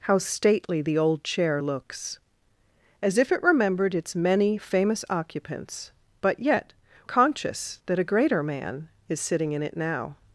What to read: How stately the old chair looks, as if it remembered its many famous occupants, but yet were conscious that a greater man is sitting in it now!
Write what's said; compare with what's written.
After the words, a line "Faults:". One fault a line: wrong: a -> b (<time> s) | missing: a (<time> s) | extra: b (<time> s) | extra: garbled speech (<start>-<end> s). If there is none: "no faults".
How stately the old chair looks, as if it remembered its many famous occupants, but yet conscious that a greater man is sitting in it now!
Faults:
missing: were (6.7 s)